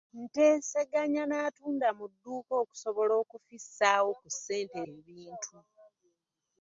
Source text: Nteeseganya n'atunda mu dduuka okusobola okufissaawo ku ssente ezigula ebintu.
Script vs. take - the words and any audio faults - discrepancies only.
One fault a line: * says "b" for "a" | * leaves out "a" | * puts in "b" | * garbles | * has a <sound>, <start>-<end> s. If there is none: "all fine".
* leaves out "ezigula"